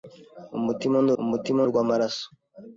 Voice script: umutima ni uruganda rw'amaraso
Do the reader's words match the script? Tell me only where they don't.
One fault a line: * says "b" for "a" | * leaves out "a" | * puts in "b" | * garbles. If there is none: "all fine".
* says "umutima" for "uruganda"